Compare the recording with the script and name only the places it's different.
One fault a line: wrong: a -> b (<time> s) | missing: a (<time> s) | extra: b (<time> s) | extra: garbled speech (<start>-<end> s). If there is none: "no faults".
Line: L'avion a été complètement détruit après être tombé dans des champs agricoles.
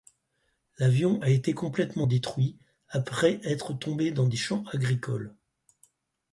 no faults